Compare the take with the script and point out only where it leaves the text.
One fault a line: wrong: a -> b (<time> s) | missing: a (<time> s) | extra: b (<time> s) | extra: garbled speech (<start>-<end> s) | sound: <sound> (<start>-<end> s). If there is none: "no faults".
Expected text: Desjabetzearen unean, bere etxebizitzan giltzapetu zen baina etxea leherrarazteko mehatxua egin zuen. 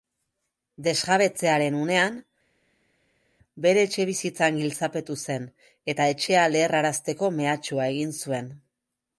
wrong: baina -> eta (5.9 s)